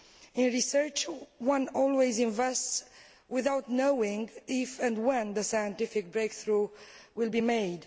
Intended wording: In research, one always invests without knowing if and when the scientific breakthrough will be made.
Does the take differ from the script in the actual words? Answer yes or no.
no